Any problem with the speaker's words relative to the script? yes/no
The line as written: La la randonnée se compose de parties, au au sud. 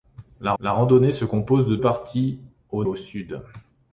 no